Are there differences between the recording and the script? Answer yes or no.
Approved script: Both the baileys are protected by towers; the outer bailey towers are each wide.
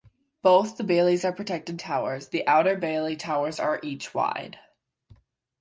yes